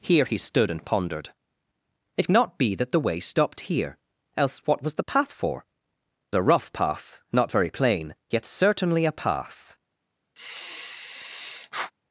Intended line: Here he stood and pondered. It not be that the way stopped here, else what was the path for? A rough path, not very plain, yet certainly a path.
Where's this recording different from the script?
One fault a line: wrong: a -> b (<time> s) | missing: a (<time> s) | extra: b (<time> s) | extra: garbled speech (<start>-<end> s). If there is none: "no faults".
no faults